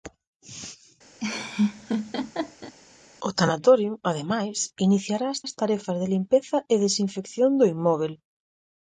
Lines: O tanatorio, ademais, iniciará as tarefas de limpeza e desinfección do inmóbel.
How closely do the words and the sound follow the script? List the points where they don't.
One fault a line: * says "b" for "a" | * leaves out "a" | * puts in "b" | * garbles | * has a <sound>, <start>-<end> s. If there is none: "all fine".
* has a laugh, 1.2-2.7 s
* puts in "as"